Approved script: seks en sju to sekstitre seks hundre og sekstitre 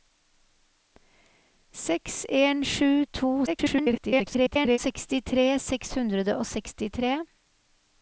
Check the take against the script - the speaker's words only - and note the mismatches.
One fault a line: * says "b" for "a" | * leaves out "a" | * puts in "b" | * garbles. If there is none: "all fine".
* garbles